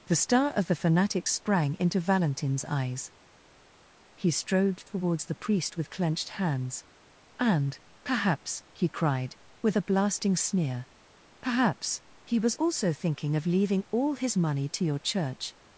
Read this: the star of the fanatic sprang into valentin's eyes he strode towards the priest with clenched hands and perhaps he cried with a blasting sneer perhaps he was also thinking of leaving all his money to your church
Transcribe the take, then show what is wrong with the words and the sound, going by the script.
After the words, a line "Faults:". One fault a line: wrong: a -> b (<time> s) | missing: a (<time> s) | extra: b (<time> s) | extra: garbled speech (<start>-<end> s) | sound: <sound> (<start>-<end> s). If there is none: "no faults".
the star of the fanatic sprang into valentin's eyes he strode towards the priest with clenched hands and perhaps he cried with a blasting sneer perhaps he was also thinking of leaving all his money to your church
Faults:
no faults